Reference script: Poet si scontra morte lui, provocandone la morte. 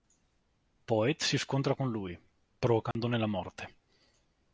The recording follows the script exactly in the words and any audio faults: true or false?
false